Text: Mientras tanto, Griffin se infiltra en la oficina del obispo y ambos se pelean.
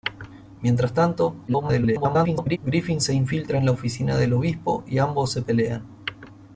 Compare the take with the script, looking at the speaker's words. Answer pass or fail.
fail